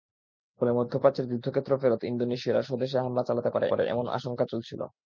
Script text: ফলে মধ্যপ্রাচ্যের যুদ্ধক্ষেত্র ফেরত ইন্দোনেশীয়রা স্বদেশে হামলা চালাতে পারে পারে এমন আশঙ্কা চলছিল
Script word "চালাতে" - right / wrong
right